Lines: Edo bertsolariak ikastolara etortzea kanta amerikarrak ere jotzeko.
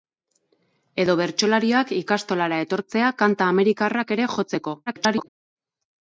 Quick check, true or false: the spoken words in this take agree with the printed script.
false